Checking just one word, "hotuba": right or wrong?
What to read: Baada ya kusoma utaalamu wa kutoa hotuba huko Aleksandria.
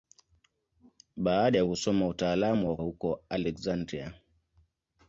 wrong